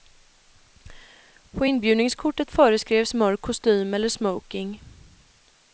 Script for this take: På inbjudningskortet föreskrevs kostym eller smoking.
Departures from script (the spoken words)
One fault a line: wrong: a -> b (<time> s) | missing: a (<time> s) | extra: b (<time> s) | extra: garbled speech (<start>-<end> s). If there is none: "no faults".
extra: mörk (3.1 s)